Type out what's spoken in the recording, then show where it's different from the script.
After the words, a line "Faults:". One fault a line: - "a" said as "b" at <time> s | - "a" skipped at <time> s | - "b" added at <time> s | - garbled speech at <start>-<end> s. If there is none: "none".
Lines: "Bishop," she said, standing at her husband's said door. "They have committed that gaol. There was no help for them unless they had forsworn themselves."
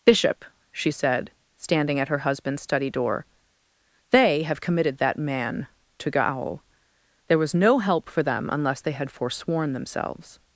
"Bishop," she said, standing at her husband's study door. "They have committed that man to gaol. There was no help for them unless they had forsworn themselves."
Faults:
- "said" said as "study" at 2.6 s
- "man to" added at 5.2 s